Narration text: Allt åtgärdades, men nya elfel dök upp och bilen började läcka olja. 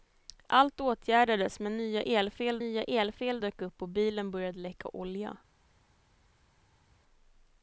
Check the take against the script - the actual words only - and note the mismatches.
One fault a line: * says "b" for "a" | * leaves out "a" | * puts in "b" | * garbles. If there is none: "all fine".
* puts in "nya elfel"